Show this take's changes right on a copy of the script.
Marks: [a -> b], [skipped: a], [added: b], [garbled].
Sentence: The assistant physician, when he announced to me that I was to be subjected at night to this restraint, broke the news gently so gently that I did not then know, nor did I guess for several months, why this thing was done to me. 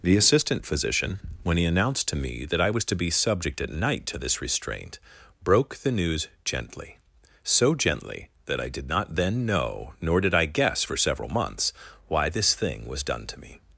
The assistant physician, when he announced to me that I was to be [subjected -> subject] at night to this restraint, broke the news gently so gently that I did not then know, nor did I guess for several months, why this thing was done to me.